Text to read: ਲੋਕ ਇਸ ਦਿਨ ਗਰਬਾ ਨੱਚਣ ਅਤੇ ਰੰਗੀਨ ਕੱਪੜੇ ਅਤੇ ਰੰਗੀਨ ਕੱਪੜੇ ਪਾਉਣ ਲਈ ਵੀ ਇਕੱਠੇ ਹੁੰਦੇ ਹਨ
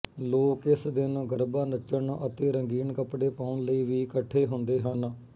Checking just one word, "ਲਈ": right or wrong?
right